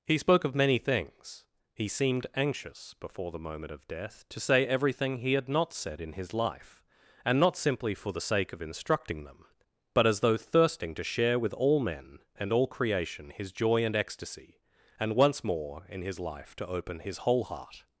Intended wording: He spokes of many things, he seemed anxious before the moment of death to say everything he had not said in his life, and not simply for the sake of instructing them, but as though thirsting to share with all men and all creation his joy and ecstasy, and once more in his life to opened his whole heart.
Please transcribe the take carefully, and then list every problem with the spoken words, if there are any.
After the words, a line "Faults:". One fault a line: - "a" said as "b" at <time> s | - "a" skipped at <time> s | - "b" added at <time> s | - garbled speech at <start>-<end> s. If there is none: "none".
He spoke of many things, he seemed anxious before the moment of death to say everything he had not said in his life, and not simply for the sake of instructing them, but as though thirsting to share with all men and all creation his joy and ecstasy, and once more in his life to open his whole heart.
Faults:
- "spokes" said as "spoke" at 0.2 s
- "opened" said as "open" at 16.7 s